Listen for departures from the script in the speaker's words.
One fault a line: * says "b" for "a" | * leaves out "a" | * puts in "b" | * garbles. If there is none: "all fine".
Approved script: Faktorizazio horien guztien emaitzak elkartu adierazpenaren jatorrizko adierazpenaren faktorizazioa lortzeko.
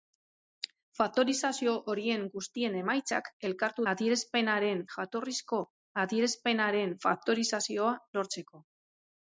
all fine